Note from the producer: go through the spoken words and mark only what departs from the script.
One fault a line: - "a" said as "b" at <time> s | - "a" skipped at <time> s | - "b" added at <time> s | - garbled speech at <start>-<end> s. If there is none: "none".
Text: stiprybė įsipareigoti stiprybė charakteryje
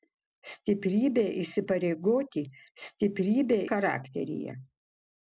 none